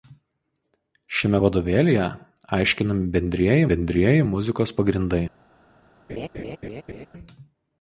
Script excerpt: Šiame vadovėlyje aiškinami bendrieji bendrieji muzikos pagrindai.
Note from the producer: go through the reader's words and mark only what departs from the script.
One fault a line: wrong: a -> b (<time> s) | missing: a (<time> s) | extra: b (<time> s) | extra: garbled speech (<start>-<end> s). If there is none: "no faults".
no faults